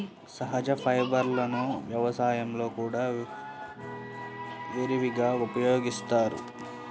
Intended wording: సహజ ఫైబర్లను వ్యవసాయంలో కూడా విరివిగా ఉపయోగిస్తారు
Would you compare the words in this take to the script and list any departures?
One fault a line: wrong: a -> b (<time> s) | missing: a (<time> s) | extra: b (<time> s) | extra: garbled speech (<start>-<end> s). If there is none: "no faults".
no faults